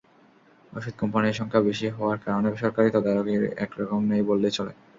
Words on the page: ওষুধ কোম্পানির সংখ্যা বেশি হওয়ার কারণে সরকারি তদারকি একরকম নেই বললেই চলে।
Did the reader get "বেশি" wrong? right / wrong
right